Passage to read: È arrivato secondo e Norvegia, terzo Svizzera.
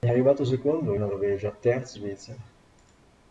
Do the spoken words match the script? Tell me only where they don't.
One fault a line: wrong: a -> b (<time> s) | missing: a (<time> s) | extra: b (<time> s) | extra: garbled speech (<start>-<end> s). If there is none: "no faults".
no faults